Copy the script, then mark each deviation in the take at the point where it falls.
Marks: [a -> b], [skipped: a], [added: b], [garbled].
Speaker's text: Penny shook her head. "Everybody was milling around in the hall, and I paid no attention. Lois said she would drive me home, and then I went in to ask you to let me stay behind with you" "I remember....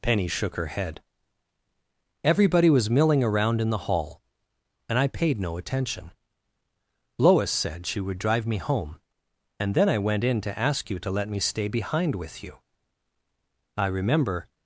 Penny shook her head. "Everybody was milling around in the hall, and I paid no attention. Lois said she would drive me home, and then I went in to ask you to let me stay behind with you" "I remember....